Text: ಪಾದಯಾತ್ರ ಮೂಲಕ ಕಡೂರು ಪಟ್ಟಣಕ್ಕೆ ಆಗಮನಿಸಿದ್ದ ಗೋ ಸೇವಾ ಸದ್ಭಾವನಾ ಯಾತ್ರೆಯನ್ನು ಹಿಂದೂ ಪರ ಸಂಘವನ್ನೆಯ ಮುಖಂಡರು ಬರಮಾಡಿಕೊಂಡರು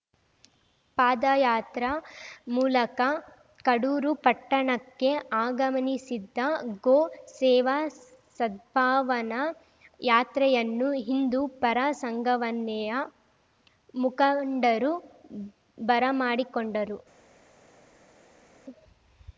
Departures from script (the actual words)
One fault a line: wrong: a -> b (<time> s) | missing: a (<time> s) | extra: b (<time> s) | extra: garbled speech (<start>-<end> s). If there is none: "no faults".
no faults